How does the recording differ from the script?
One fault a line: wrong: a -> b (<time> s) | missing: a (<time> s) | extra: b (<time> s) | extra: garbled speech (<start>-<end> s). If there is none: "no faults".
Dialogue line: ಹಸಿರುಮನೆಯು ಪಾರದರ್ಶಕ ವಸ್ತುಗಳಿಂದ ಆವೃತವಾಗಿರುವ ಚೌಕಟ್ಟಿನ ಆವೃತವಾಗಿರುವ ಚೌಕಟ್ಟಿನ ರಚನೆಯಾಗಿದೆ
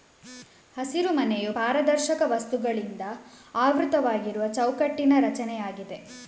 missing: ಆವೃತವಾಗಿರುವ ಚೌಕಟ್ಟಿನ (5.1 s)